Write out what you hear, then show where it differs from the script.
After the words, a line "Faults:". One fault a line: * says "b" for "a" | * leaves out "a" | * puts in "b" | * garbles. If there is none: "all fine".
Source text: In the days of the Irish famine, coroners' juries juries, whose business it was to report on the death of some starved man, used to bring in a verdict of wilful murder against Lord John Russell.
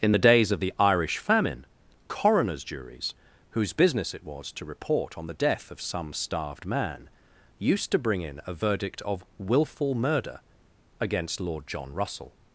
In the days of the Irish famine, coroners' juries, whose business it was to report on the death of some starved man, used to bring in a verdict of wilful murder against Lord John Russell.
Faults:
* leaves out "juries"